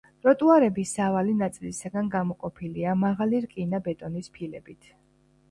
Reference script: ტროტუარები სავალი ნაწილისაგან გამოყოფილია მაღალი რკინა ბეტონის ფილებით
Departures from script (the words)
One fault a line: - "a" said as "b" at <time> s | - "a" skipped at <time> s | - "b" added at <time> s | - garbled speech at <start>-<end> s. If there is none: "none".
none